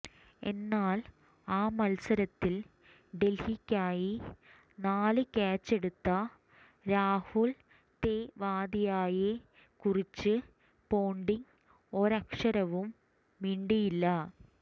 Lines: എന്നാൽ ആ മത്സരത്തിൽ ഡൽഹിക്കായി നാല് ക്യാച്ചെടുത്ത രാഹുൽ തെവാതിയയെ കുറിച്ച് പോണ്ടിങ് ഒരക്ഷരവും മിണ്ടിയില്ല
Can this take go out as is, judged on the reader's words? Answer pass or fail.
pass